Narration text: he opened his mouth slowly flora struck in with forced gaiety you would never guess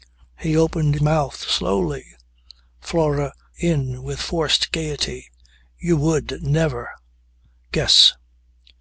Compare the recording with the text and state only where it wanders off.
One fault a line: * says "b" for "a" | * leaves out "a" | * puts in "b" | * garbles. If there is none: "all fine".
* leaves out "his"
* leaves out "struck"